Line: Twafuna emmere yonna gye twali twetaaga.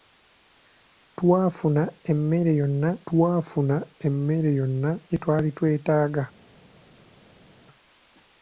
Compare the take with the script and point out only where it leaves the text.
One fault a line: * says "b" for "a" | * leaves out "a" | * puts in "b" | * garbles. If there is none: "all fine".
* puts in "twafuna emmere yonna"